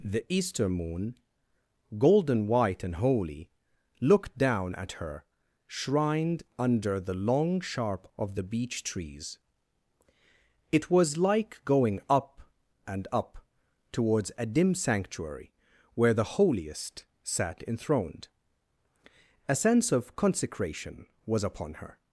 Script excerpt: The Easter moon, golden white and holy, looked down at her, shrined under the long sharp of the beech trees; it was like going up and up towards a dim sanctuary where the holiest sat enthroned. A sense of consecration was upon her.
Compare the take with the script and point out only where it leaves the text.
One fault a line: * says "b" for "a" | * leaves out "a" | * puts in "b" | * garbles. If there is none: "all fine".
all fine